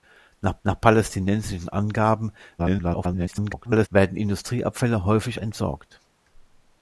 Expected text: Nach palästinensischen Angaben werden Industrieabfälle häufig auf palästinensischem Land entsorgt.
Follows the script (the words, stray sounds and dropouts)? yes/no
no